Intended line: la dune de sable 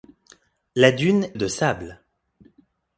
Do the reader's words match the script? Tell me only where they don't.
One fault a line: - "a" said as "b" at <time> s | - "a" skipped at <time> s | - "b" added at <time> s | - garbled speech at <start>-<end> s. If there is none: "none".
none